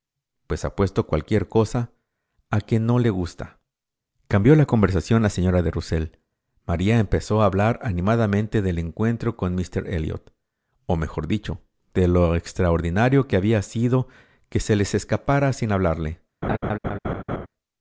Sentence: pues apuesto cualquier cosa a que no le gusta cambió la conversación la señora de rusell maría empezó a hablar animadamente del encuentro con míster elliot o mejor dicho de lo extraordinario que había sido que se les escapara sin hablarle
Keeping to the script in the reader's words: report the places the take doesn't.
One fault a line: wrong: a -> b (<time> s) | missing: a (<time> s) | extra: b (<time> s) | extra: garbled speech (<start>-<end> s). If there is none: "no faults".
no faults